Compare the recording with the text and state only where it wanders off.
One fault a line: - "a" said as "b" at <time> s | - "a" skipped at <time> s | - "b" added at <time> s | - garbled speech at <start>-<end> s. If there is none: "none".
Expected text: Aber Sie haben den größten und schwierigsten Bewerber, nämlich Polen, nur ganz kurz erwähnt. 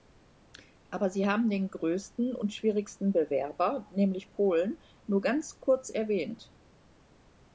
none